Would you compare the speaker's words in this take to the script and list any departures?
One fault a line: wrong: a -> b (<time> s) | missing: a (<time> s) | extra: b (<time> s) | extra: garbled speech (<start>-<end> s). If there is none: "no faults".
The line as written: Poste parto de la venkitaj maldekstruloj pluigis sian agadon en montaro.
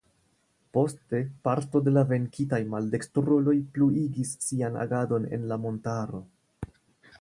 extra: la (5.5 s)